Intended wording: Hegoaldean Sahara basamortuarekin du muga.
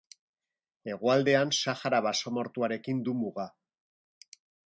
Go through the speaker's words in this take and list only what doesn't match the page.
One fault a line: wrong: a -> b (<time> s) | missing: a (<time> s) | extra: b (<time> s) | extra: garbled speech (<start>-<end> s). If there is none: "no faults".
no faults